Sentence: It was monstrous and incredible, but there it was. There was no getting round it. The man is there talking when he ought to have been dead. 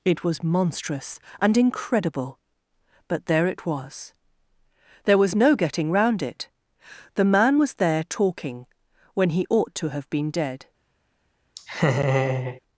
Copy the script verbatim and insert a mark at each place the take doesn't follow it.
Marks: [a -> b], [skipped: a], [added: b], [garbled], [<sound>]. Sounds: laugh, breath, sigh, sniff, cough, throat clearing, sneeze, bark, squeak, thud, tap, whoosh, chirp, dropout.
It was monstrous and incredible, but there it was. There was no getting round it. The man [is -> was] there talking when he ought to have been dead. [laugh]